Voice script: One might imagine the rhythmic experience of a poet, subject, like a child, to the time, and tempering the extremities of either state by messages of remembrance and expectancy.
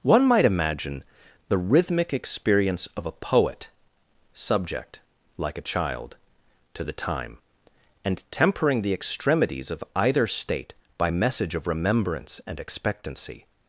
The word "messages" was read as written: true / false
false